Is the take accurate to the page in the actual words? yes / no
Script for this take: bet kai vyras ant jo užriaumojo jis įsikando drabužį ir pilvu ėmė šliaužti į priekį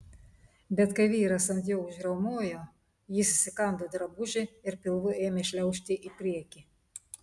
yes